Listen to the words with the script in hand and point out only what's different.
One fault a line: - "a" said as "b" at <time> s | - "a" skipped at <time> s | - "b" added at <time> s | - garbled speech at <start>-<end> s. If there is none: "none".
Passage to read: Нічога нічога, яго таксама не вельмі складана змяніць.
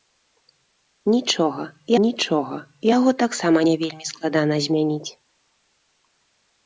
none